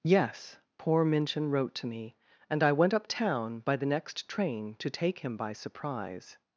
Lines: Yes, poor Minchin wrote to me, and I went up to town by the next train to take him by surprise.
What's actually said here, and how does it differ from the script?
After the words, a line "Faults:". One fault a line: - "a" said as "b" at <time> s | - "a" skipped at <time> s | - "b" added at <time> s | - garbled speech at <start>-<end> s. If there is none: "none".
Yes, poor Minchin wrote to me, and I went up town by the next train to take him by surprise.
Faults:
- "to" skipped at 3.0 s